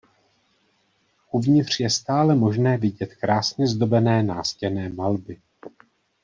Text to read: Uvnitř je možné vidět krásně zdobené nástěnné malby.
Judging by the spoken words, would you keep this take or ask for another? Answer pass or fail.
fail